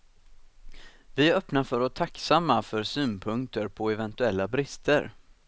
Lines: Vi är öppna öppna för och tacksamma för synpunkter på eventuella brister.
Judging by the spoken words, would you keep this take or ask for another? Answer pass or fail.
fail